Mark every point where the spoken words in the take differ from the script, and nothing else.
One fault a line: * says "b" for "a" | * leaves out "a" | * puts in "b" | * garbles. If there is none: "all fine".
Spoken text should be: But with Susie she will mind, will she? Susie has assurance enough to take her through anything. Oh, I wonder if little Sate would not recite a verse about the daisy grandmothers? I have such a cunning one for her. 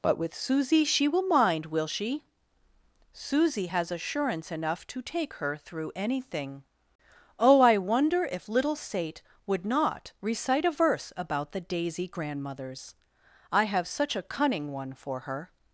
all fine